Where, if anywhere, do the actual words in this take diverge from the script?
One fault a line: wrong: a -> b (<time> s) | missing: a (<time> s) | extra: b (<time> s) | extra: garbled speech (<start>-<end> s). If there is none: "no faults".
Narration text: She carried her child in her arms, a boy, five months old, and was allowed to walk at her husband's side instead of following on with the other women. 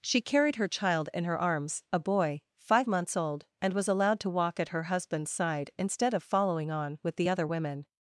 no faults